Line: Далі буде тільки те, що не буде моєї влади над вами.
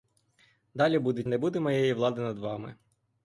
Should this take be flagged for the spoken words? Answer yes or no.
yes